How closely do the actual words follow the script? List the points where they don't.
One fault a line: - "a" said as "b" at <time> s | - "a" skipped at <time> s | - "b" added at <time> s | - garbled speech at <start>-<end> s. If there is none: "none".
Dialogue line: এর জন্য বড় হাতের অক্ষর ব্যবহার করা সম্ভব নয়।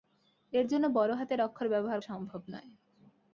- "করা" skipped at 2.0 s